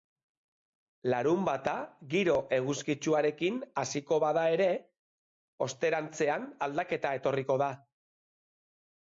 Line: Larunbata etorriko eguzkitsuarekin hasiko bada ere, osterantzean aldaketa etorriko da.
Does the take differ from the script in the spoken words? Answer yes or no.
yes